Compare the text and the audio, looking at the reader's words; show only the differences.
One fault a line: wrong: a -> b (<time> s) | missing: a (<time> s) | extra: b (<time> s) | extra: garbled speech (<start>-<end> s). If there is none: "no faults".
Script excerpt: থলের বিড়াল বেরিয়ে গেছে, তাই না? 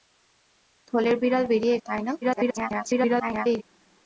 missing: গেছে (1.8 s)
extra: garbled speech (2.2-3.6 s)